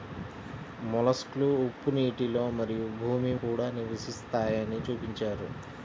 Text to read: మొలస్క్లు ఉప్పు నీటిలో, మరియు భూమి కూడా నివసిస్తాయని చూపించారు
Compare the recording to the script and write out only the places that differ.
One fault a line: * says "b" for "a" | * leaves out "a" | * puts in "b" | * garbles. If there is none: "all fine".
all fine